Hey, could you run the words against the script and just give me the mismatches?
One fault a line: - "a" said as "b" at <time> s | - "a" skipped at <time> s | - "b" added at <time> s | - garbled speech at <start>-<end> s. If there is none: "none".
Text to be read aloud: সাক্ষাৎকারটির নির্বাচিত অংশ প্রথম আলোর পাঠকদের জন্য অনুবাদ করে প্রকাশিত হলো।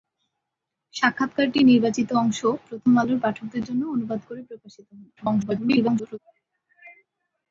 - garbled speech at 5.2-6.2 s